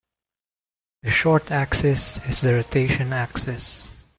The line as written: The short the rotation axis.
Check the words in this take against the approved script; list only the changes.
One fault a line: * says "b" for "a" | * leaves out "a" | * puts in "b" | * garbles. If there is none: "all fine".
* puts in "axis is"